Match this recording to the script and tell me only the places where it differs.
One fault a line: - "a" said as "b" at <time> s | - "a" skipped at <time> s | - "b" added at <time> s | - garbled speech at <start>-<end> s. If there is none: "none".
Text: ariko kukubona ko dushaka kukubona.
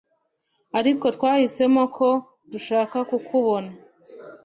- "kukubona" said as "twahisemo" at 1.1 s